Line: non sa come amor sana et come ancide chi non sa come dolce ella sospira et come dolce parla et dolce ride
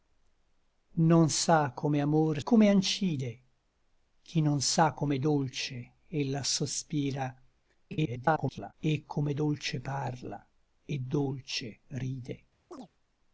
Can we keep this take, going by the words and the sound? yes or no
no